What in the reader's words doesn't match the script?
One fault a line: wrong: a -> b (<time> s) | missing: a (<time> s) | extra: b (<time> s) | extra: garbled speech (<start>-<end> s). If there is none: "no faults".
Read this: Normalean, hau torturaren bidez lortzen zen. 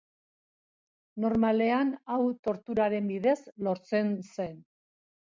no faults